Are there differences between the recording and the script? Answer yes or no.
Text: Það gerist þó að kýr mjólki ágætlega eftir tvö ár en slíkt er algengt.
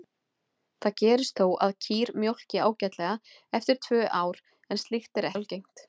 no